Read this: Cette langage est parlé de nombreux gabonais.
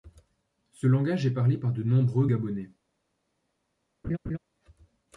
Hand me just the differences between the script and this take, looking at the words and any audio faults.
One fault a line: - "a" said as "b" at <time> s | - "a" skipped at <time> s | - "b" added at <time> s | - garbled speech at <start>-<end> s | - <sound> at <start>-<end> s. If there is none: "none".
- "Cette" said as "Ce" at 0.7 s
- "par" added at 1.6 s
- laugh at 4.0-4.4 s